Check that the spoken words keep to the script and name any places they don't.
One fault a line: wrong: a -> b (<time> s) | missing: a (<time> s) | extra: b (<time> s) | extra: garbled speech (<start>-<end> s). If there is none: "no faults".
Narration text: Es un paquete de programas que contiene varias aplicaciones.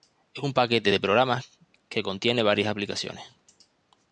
no faults